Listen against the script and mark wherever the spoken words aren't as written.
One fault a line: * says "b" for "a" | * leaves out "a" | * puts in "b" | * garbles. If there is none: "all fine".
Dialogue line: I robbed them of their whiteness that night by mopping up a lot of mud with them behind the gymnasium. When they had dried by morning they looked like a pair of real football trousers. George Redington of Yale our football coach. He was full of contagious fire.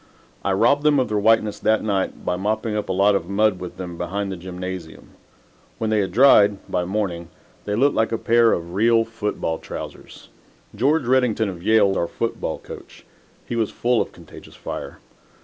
all fine